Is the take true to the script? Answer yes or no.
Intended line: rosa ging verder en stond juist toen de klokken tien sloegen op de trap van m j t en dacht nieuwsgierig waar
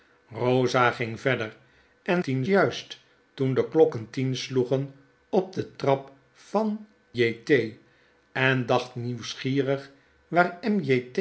no